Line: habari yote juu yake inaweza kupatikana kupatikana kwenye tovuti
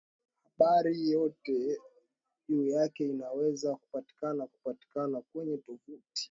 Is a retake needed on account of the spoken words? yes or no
no